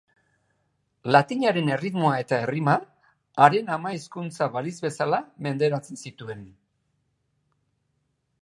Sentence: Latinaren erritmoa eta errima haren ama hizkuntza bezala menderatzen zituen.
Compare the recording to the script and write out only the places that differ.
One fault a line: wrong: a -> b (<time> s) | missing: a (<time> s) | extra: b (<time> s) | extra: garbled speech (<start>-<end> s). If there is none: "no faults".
extra: balitz (4.6 s)